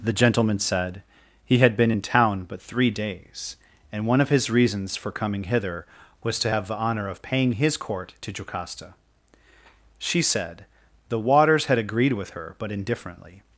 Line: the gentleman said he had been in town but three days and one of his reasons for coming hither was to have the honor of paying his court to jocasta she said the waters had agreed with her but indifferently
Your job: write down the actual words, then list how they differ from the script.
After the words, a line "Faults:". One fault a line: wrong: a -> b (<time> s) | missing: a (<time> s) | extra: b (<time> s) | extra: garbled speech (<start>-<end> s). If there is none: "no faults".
the gentleman said he had been in town but three days and one of his reasons for coming hither was to have the honor of paying his court to jocasta she said the waters had agreed with her but indifferently
Faults:
no faults